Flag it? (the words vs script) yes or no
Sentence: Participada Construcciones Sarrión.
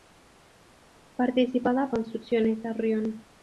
no